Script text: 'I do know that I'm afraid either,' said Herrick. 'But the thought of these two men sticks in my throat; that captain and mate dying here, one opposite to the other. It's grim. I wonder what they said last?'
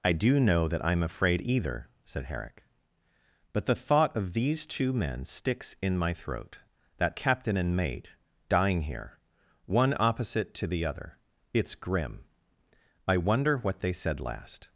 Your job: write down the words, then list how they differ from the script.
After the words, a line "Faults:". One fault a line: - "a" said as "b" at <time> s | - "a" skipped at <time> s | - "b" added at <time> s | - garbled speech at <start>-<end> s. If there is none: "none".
'I do know that I'm afraid either,' said Herrick. 'But the thought of these two men sticks in my throat; that captain and mate dying here, one opposite to the other. It's grim. I wonder what they said last?'
Faults:
none